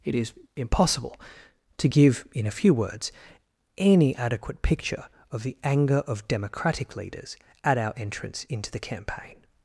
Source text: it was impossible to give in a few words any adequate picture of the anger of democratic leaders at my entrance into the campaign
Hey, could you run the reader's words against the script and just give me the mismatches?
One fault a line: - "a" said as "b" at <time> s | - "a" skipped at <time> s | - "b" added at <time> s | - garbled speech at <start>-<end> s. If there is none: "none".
- "was" said as "is" at 0.1 s
- "my" said as "our" at 7.8 s